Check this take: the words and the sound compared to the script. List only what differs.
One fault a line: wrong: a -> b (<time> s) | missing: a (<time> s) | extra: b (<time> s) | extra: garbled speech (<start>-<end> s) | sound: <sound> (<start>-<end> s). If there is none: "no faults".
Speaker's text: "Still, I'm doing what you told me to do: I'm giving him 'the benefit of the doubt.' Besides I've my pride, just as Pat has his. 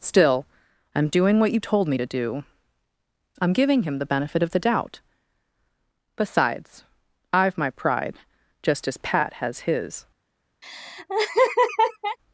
sound: laugh (10.6-12.2 s)